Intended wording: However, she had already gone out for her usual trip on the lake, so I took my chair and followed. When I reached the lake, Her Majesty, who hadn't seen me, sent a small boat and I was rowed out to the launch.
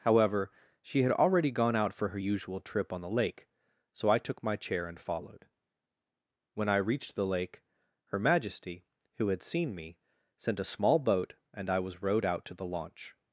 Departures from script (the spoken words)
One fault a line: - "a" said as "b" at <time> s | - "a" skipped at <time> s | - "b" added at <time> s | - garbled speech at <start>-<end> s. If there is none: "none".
- "hadn't" said as "had" at 9.3 s